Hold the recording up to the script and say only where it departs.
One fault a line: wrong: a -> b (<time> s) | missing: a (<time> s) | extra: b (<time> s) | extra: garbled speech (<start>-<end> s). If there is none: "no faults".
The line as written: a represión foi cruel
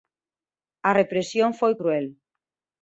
no faults